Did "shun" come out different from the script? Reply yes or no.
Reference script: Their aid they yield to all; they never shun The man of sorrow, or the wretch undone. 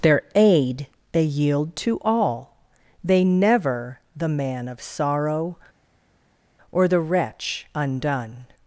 yes